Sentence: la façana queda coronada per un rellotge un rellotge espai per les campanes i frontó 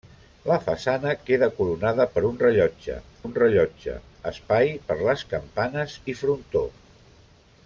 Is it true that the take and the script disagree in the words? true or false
false